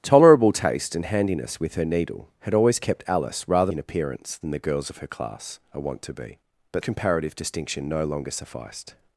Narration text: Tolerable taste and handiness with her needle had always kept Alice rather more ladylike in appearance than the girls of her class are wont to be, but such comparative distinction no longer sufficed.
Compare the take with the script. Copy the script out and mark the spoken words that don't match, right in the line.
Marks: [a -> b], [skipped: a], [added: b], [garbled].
Tolerable taste and handiness with her needle had always kept Alice rather [skipped: more ladylike] in appearance than the girls of her class are wont to be, but [skipped: such] comparative distinction no longer sufficed.